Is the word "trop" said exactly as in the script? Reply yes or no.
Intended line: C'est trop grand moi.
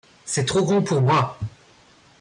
yes